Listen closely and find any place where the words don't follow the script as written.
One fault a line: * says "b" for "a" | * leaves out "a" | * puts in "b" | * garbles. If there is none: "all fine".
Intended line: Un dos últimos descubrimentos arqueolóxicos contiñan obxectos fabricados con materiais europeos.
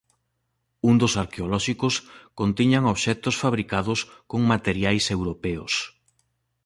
* leaves out "últimos descubrimentos"